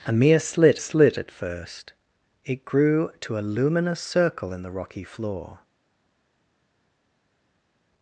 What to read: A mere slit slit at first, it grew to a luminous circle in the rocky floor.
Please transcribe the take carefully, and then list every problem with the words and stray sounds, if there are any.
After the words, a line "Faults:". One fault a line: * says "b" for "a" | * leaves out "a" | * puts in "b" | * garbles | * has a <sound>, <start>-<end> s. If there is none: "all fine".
A mere slit slit at first, it grew to a luminous circle in the rocky floor.
Faults:
all fine